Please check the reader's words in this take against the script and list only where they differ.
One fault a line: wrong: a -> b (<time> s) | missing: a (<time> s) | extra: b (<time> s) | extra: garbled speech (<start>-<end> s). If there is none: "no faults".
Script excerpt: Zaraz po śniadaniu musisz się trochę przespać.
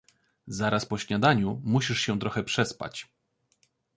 no faults